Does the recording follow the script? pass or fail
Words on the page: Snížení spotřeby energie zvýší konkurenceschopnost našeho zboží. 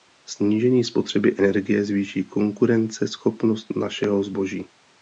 pass